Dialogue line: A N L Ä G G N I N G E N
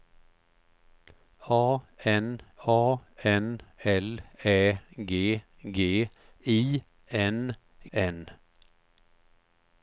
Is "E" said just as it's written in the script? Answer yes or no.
no